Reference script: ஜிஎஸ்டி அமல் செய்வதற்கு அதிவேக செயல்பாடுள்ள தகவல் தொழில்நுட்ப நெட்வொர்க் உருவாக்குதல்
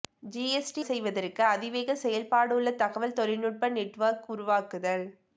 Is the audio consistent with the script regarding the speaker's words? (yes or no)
no